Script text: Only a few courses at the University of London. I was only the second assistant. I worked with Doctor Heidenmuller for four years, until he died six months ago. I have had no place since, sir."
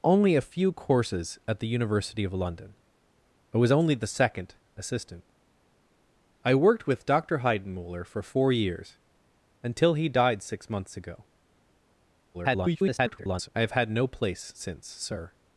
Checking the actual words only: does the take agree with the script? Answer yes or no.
no